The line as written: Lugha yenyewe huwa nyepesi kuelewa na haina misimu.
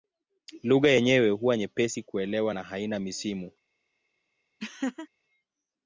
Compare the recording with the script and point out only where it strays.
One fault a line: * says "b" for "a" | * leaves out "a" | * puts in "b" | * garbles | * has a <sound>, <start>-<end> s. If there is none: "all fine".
* has a laugh, 4.6-5.1 s